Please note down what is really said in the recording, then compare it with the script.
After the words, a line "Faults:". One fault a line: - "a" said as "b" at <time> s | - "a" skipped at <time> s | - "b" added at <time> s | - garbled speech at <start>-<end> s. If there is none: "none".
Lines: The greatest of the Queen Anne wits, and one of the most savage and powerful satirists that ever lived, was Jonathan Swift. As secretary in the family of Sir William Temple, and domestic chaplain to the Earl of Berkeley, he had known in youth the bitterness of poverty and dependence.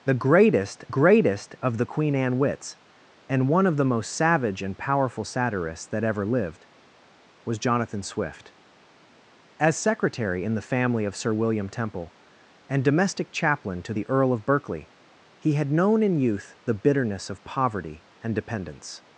The greatest greatest of the Queen Anne wits, and one of the most savage and powerful satirists that ever lived, was Jonathan Swift. As secretary in the family of Sir William Temple, and domestic chaplain to the Earl of Berkeley, he had known in youth the bitterness of poverty and dependence.
Faults:
- "greatest" added at 0.9 s